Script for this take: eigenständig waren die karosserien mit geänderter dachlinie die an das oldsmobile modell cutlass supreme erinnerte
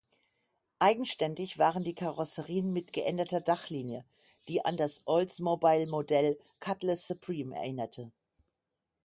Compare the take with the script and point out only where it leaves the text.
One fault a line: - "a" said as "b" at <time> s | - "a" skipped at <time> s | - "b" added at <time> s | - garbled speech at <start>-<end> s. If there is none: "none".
none